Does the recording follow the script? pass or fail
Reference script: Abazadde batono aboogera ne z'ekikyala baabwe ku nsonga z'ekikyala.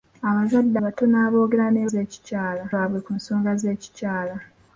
pass